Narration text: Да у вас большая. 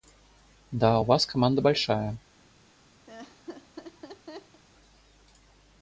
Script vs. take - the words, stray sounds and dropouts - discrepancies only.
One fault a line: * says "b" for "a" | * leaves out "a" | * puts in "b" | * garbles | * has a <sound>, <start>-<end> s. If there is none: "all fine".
* puts in "команда"
* has a laugh, 3.1-4.6 s